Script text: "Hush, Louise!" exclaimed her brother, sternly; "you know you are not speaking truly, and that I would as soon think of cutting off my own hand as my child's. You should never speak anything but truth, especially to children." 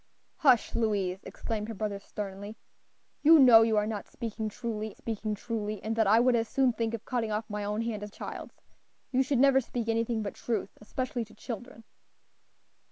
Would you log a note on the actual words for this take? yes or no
yes